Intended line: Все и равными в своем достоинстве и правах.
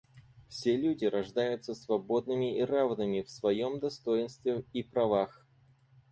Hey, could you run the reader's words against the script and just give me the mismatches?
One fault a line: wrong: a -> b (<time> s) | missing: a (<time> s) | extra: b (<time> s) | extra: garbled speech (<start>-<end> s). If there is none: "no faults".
extra: люди рождаются свободными (0.8 s)